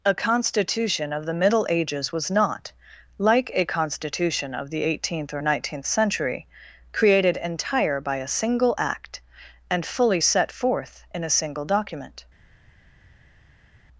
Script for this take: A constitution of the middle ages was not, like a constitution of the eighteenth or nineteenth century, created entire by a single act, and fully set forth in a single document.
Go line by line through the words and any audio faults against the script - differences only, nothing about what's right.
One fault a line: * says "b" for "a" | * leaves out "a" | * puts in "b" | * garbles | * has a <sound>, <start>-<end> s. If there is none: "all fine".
all fine